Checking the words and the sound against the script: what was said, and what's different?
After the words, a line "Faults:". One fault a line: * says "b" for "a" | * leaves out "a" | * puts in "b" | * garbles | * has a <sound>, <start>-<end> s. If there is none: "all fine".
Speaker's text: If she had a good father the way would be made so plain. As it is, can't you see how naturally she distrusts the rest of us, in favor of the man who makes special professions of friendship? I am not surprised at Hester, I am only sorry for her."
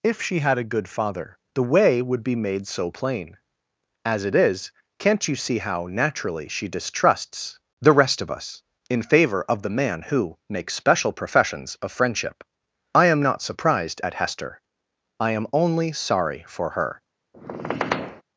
If she had a good father the way would be made so plain. As it is, can't you see how naturally she distrusts the rest of us, in favor of the man who makes special professions of friendship? I am not surprised at Hester, I am only sorry for her."
Faults:
* has a squeak, 17.3-18.2 s